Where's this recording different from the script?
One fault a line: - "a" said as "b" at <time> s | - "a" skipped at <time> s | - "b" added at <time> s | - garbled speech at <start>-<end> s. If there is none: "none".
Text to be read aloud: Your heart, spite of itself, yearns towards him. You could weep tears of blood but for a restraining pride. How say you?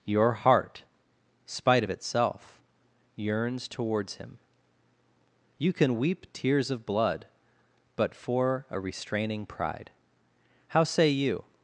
- "could" said as "can" at 5.7 s